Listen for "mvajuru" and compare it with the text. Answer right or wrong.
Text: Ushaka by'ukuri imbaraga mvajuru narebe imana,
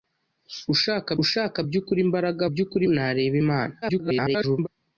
wrong